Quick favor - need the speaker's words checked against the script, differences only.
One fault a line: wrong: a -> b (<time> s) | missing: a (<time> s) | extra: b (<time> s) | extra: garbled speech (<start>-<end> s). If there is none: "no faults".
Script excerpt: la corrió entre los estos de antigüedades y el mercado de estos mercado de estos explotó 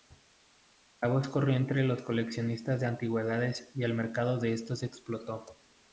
extra: voz (1.1 s)
wrong: estos -> coleccionistas (2.0 s)
missing: mercado de estos (4.8 s)